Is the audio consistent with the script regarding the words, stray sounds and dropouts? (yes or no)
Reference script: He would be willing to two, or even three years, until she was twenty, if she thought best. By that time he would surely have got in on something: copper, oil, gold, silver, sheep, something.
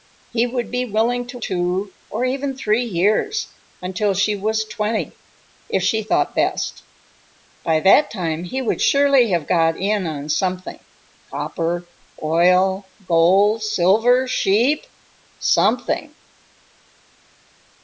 yes